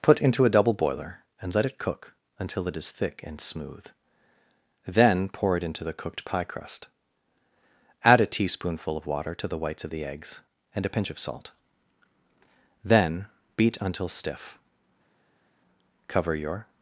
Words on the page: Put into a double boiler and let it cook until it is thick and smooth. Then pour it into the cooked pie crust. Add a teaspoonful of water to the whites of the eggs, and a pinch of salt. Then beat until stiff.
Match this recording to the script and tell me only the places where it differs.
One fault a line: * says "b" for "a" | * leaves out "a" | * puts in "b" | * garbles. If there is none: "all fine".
* puts in "Cover your"